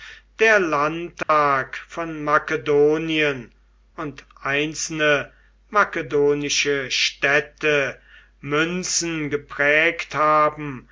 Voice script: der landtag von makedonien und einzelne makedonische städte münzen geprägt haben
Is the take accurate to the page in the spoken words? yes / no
yes